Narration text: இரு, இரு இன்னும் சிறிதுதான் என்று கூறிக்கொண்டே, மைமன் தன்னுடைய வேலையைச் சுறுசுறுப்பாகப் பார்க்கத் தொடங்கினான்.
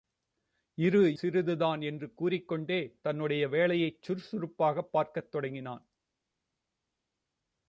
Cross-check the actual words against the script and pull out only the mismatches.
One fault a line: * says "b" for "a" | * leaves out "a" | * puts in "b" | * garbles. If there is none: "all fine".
* leaves out "இரு இன்னும்"
* leaves out "மைமன்"